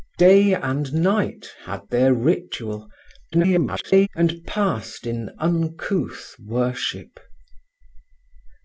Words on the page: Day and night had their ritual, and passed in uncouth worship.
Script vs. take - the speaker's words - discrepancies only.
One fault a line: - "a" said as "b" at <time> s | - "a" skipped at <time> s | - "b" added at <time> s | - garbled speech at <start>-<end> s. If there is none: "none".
- garbled speech at 3.3-4.1 s